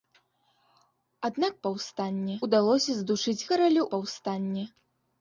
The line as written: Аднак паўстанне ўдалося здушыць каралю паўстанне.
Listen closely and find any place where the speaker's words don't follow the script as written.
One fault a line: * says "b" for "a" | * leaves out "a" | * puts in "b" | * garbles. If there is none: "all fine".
all fine